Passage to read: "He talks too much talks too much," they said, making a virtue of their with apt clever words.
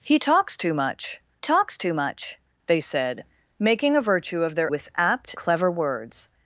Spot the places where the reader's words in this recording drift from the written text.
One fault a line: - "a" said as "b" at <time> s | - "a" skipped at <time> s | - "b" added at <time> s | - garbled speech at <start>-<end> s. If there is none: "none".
none